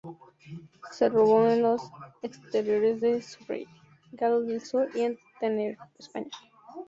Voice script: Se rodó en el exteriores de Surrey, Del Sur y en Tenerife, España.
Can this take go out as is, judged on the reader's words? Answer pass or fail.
fail